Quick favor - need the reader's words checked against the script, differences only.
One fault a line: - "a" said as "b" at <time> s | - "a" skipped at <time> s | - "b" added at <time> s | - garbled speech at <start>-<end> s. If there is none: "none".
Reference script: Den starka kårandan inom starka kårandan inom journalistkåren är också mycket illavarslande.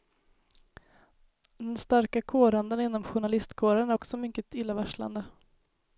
- "starka kårandan inom" skipped at 3.0 s